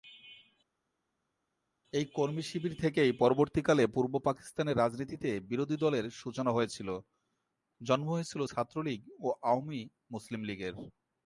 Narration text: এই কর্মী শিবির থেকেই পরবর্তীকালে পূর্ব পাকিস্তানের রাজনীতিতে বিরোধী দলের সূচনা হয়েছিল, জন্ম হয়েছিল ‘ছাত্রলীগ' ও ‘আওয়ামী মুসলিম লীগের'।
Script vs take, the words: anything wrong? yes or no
no